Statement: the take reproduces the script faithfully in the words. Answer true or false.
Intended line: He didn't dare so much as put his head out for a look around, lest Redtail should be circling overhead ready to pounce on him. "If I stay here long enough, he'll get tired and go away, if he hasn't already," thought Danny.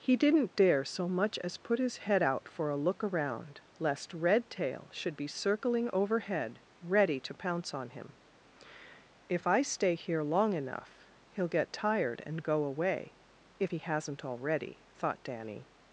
true